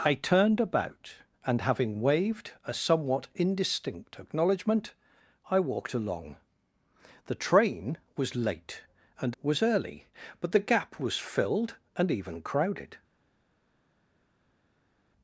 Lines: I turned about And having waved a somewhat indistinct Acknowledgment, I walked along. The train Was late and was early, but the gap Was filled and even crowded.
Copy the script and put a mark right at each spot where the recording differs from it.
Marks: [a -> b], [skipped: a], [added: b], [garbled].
I turned about And having waved a somewhat indistinct Acknowledgment, I walked along. The train Was late and was early, but the gap Was filled and even crowded.